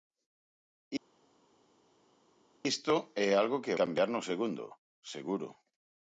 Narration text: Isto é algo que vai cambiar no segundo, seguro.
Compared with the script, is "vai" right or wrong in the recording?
wrong